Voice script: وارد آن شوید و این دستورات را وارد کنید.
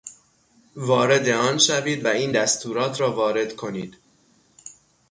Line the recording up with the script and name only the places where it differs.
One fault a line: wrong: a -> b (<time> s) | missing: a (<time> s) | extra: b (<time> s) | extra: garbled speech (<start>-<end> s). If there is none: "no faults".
no faults